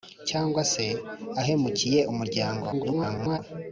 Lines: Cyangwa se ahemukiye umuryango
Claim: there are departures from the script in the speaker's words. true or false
true